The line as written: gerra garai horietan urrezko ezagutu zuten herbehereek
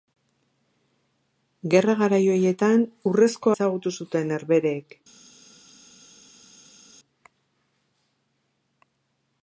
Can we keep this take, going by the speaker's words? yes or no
yes